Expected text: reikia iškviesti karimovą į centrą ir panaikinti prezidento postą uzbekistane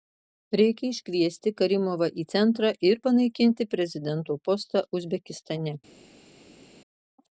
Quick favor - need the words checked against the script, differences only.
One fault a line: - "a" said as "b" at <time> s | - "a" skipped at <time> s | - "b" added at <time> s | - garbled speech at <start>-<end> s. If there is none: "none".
none